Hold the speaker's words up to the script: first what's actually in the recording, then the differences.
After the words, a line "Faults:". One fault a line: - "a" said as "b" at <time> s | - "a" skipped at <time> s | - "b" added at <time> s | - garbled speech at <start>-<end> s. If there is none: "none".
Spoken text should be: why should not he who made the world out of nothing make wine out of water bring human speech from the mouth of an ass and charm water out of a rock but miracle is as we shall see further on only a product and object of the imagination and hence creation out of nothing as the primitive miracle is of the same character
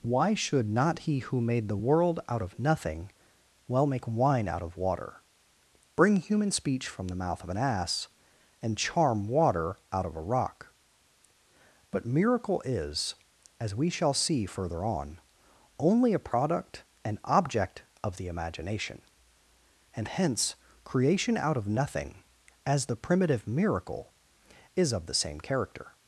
why should not he who made the world out of nothing well make wine out of water bring human speech from the mouth of an ass and charm water out of a rock but miracle is as we shall see further on only a product and object of the imagination and hence creation out of nothing as the primitive miracle is of the same character
Faults:
- "well" added at 3.7 s